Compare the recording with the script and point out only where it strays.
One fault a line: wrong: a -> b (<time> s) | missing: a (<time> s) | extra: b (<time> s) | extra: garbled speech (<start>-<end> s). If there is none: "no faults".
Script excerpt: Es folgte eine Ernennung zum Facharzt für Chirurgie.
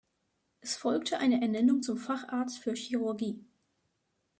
no faults